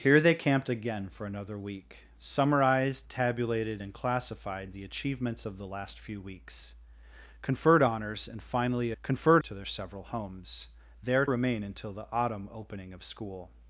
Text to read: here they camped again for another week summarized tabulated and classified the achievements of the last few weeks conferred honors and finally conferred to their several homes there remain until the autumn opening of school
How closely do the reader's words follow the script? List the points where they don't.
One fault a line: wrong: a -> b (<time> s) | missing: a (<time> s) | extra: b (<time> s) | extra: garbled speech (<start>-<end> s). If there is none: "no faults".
no faults